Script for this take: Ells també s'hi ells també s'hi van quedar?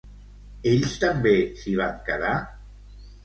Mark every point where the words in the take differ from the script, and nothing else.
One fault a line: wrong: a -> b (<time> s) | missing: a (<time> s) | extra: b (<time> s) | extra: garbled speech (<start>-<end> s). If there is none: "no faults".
missing: ells també s'hi (1.8 s)